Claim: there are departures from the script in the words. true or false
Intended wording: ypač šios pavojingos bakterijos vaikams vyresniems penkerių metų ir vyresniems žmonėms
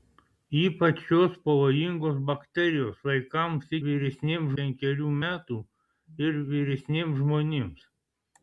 false